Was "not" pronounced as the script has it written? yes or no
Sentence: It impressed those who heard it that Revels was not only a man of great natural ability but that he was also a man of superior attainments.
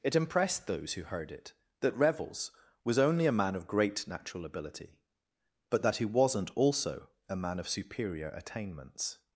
no